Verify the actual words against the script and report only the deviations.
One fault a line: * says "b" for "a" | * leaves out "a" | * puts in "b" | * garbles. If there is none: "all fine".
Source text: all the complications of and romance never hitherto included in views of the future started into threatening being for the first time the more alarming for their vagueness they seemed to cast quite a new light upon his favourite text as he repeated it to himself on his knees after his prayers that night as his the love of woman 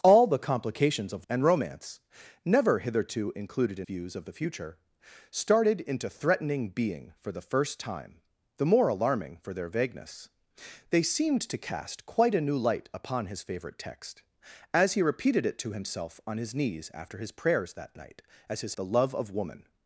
all fine